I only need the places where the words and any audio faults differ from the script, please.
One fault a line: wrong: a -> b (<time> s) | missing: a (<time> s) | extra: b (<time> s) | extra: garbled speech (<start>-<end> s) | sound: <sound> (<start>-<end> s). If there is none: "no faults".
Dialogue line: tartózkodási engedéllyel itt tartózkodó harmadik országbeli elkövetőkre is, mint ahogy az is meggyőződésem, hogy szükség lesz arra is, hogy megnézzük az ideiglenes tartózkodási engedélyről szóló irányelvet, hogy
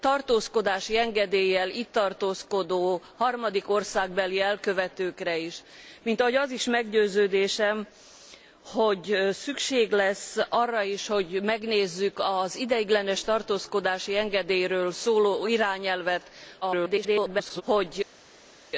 extra: garbled speech (16.6-17.6 s)